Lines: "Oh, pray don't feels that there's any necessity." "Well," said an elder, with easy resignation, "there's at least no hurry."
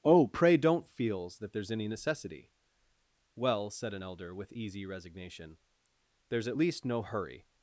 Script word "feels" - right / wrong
right